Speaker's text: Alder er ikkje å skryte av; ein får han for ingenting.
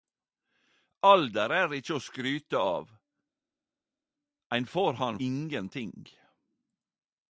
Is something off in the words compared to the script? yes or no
yes